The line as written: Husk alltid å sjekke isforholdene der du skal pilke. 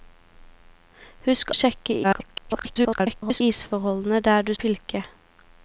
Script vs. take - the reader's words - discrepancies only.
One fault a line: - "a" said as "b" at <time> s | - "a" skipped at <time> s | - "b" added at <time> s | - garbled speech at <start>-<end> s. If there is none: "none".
- "alltid" skipped at 1.5 s
- garbled speech at 2.0-3.4 s
- "skal" skipped at 4.5 s